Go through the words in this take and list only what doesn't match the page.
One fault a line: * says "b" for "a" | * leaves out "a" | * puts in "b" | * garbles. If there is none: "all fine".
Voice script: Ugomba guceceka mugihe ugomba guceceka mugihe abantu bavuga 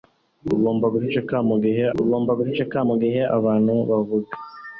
all fine